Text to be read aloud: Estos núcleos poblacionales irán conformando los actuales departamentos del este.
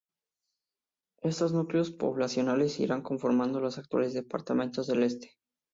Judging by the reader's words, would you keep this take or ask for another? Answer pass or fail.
pass